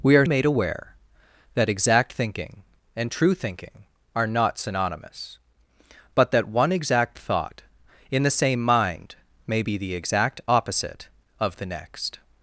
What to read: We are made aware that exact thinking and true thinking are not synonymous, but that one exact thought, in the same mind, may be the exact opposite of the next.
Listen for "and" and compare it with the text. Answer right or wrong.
right